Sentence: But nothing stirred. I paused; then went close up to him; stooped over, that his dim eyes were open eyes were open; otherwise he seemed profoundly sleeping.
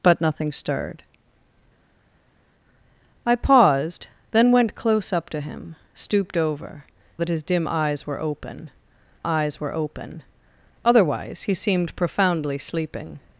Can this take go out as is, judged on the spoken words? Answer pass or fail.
pass